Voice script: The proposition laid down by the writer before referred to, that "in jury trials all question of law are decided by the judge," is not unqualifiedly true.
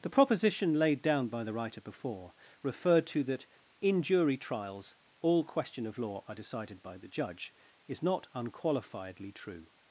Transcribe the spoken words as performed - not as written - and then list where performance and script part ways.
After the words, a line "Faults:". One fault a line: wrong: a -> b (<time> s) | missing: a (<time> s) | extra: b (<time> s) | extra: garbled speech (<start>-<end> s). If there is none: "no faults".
The proposition laid down by the writer before referred to, that "in jury trials all question of law are decided by the judge," is not unqualifiedly true.
Faults:
no faults